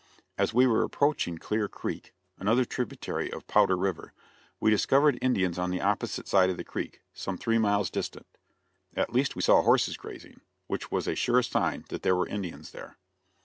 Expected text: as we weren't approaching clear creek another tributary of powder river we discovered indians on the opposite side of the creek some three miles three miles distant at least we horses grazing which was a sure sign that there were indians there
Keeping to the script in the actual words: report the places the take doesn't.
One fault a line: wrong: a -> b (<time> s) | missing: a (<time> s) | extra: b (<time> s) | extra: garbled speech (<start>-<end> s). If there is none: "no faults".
wrong: weren't -> were (0.7 s)
missing: three miles (7.9 s)
extra: saw (9.4 s)